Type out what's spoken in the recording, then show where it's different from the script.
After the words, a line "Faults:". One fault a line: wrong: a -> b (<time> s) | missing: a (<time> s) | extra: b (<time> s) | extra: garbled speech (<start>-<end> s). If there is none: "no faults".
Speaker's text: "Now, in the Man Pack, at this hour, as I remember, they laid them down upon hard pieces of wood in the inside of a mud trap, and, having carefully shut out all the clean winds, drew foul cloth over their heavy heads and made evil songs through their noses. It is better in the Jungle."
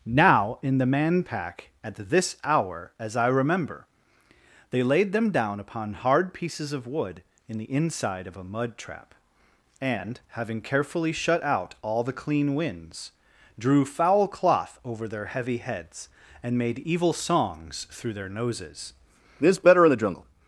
"Now, in the Man Pack, at this hour, as I remember, they laid them down upon hard pieces of wood in the inside of a mud trap, and, having carefully shut out all the clean winds, drew foul cloth over their heavy heads and made evil songs through their noses. This better in the Jungle."
Faults:
wrong: It is -> This (19.4 s)